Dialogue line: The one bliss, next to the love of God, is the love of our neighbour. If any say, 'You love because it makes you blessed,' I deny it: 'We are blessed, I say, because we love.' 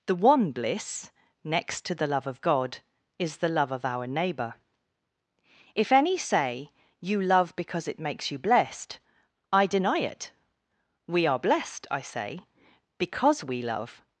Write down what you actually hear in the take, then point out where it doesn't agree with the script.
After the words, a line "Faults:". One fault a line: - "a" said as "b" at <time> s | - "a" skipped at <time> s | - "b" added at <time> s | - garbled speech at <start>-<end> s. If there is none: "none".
The one bliss, next to the love of God, is the love of our neighbour. If any say, 'You love because it makes you blessed,' I deny it: 'We are blessed, I say, because we love.'
Faults:
none